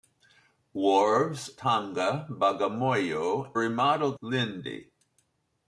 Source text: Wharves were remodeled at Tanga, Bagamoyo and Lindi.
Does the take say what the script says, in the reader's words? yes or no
no